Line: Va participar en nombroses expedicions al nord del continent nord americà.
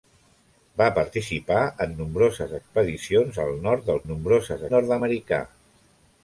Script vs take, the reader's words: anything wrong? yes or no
yes